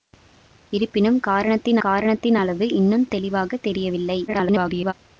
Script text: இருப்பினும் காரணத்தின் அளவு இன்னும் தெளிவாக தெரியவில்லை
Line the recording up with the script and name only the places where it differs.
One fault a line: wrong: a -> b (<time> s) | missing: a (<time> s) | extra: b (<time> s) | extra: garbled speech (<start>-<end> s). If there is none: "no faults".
extra: காரணத்தின் (1.8 s)
extra: garbled speech (4.3-4.9 s)